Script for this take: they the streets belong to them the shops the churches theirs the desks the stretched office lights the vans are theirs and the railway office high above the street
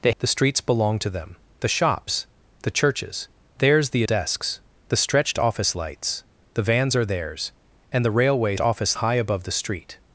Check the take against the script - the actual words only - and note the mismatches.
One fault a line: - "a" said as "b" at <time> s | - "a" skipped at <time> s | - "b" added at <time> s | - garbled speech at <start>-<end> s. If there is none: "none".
none